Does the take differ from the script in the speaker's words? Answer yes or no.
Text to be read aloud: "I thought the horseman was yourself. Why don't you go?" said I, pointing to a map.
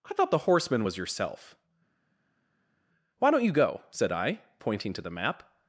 yes